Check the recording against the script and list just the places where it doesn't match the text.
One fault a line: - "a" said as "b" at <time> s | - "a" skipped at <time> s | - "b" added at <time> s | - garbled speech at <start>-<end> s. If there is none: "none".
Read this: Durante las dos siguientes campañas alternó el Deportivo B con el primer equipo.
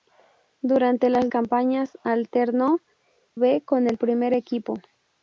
- "dos siguientes" skipped at 1.3 s
- "el Deportivo" skipped at 2.8 s